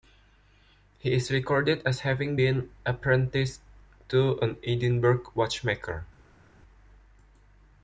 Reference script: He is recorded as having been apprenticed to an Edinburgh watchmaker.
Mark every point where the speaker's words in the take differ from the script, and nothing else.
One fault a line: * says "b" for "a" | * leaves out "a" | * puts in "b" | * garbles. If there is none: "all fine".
all fine